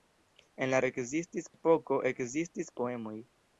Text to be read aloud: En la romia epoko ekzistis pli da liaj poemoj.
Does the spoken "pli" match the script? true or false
false